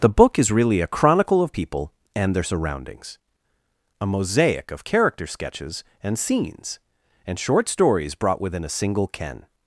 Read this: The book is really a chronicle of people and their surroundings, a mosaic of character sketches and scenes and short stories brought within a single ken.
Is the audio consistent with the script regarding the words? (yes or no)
yes